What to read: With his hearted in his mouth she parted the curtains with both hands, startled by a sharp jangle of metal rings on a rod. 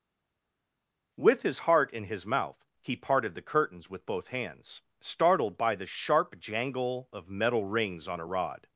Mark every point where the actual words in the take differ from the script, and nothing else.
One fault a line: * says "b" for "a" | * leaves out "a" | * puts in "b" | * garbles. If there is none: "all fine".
* says "heart" for "hearted"
* says "he" for "she"
* says "the" for "a"